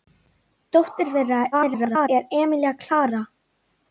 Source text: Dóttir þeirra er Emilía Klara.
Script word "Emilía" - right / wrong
right